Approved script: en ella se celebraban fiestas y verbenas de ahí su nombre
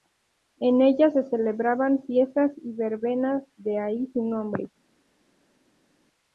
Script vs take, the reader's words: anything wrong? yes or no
no